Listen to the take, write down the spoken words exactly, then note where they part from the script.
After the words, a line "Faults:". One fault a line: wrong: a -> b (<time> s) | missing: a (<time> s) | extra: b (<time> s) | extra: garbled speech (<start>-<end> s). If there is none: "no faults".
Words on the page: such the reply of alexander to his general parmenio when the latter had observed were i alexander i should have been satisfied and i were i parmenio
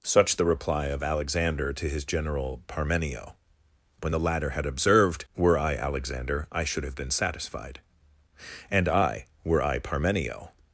such the reply of alexander to his general parmenio when the latter had observed were i alexander i should have been satisfied and i were i parmenio
Faults:
no faults